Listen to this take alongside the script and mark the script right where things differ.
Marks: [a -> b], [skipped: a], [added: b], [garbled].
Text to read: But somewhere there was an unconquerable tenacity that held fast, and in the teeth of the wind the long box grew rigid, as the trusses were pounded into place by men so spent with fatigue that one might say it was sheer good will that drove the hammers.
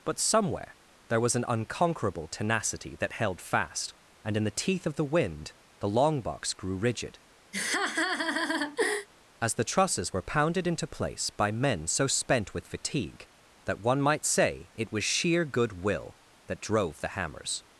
But somewhere there was an unconquerable tenacity that held fast, and in the teeth of the wind the long box grew rigid, as the trusses were pounded into place by men so spent with fatigue that one might say it was sheer good will that drove the hammers.